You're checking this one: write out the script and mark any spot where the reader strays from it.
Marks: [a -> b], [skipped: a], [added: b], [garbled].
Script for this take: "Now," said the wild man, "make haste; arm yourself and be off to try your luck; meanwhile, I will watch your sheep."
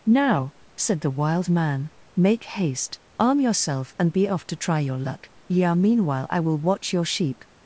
"Now," said the wild man, "make haste; arm yourself and be off to try your luck; [added: yeah] meanwhile, I will watch your sheep."